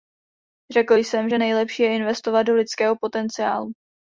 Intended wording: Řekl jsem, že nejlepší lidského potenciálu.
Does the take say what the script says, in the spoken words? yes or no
no